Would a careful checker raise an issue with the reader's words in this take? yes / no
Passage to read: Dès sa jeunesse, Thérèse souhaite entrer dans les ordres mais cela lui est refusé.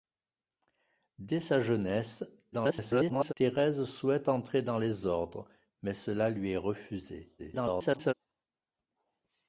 yes